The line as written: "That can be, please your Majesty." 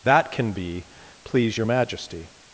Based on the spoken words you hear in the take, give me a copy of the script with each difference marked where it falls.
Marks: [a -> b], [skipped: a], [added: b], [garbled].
"That can be, please your Majesty."